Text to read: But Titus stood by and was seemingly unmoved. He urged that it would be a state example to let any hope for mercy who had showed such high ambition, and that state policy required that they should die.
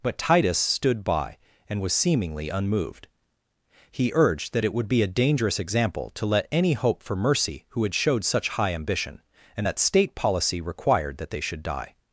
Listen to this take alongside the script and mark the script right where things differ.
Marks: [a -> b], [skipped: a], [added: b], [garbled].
But Titus stood by and was seemingly unmoved. He urged that it would be a [state -> dangerous] example to let any hope for mercy who had showed such high ambition, and that state policy required that they should die.